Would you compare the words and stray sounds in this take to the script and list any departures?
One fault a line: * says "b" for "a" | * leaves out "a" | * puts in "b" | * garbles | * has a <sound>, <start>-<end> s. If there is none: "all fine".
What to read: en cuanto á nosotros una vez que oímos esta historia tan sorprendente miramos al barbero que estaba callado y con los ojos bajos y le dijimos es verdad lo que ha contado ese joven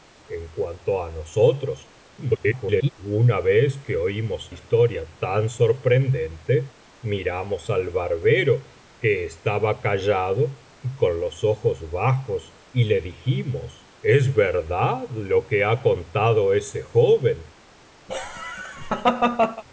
* garbles
* leaves out "esta"
* has a laugh, 18.1-19.6 s